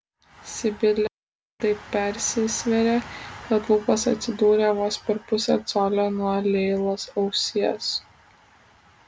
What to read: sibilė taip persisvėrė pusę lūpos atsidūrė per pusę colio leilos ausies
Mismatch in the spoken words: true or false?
true